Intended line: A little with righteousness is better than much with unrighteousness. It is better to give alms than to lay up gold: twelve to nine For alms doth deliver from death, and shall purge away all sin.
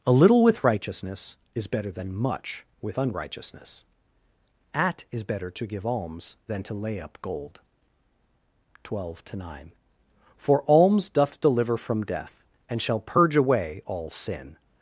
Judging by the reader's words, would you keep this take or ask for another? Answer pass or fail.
fail